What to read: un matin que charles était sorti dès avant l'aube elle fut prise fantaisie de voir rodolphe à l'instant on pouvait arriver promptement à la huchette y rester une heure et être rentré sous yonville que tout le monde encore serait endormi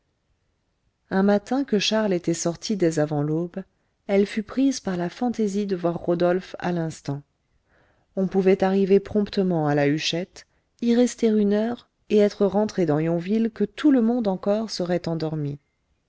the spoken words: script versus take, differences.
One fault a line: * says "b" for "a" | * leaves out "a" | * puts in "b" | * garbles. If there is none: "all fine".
* puts in "par la"
* says "dans" for "sous"